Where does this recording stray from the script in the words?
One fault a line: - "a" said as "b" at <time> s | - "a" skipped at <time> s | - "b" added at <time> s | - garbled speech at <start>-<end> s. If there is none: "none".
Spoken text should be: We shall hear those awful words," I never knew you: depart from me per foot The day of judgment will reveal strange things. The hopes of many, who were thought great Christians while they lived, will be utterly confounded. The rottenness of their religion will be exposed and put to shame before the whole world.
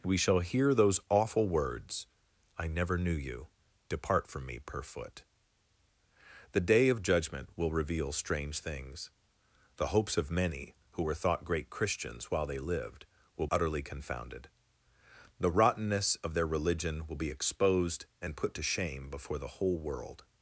- "be" skipped at 13.5 s